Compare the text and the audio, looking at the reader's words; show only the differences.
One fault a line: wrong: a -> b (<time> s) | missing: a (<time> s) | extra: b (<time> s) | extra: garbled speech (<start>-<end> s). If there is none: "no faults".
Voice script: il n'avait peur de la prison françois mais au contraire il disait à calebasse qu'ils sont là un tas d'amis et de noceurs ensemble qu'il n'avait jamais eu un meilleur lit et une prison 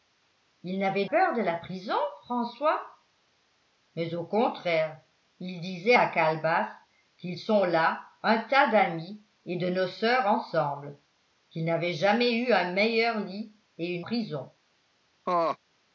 no faults